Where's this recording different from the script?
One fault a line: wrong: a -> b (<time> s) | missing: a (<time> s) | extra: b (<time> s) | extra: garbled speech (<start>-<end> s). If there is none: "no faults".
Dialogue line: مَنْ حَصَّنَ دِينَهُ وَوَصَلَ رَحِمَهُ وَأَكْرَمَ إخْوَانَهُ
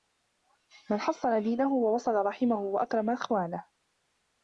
no faults